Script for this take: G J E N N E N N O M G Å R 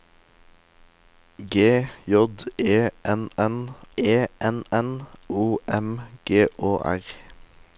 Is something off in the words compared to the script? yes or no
no